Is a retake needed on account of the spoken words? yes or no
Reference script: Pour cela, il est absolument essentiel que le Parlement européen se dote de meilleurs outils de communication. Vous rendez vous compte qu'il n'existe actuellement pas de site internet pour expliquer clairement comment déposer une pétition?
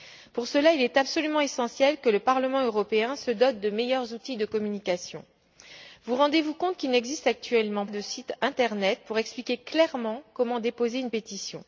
yes